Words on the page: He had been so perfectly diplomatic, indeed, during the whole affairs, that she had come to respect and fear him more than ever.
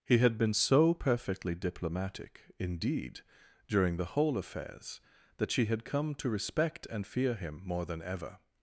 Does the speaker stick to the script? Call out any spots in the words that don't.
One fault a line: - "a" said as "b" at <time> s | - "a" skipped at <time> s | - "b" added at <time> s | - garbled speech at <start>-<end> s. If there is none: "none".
none